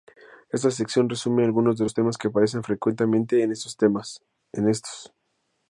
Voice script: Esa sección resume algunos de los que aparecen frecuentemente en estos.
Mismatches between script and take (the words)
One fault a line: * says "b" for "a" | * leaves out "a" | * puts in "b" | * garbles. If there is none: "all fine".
* says "Esta" for "Esa"
* puts in "temas"